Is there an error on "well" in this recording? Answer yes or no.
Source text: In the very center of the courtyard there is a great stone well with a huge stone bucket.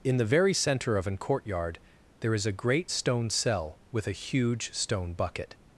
yes